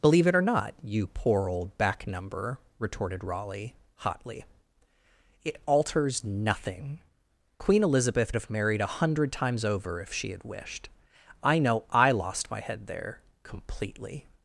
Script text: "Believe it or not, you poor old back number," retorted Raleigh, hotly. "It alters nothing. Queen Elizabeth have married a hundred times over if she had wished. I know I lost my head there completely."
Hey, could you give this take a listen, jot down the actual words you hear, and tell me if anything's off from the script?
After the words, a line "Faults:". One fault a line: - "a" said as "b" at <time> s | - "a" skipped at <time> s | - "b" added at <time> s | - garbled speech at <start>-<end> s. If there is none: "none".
"Believe it or not, you poor old back number," retorted Raleigh, hotly. "It alters nothing. Queen Elizabeth have married a hundred times over if she had wished. I know I lost my head there completely."
Faults:
none